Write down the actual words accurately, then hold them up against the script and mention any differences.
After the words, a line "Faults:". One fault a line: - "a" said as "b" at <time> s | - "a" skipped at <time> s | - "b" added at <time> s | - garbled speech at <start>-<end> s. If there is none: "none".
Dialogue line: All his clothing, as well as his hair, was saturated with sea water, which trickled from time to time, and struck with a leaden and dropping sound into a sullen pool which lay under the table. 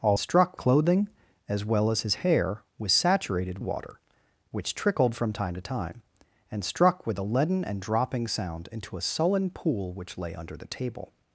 All struck clothing, as well as his hair, was saturated water, which trickled from time to time, and struck with a leaden and dropping sound into a sullen pool which lay under the table.
Faults:
- "his" said as "struck" at 0.2 s
- "with sea" skipped at 3.6 s